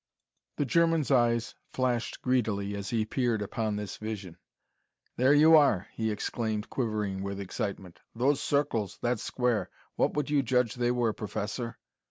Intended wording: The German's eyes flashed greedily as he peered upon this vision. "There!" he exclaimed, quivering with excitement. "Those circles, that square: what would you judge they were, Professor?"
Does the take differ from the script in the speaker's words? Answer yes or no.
yes